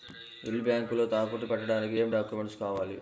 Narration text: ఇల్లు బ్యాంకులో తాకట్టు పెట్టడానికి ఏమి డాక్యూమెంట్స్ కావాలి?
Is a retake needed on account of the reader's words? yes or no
no